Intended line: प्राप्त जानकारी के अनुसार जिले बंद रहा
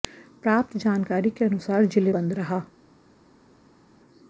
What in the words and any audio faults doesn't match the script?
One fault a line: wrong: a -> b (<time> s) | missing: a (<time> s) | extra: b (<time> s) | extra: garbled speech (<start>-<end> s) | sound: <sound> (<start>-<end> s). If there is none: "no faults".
no faults